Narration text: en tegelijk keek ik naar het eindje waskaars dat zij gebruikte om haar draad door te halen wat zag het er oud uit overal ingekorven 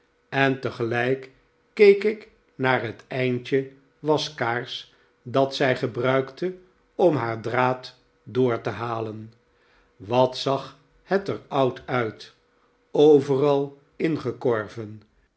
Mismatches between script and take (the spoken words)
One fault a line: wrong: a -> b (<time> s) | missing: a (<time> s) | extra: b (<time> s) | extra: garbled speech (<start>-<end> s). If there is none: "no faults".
no faults